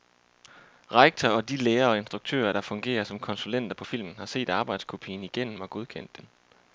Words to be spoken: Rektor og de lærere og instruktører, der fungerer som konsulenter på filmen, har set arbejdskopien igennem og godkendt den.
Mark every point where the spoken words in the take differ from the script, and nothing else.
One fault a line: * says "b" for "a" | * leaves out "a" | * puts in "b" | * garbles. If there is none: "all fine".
all fine